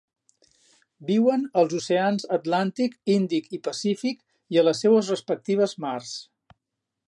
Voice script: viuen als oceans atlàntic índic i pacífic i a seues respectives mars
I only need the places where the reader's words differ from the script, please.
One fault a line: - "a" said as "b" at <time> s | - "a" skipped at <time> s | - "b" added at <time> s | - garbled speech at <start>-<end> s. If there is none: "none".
- "les" added at 4.7 s